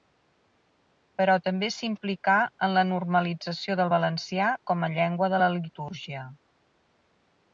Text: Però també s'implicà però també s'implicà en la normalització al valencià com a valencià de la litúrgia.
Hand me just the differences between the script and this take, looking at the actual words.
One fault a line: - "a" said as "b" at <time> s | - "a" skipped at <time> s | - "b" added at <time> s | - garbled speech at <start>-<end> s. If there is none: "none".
- "però també s'implicà" skipped at 2.4 s
- "al" said as "del" at 3.8 s
- "valencià" said as "llengua" at 5.0 s